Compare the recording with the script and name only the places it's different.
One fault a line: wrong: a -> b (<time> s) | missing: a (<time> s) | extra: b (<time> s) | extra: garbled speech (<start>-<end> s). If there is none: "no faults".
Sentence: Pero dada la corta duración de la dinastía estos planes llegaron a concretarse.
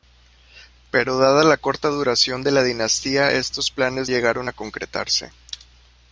no faults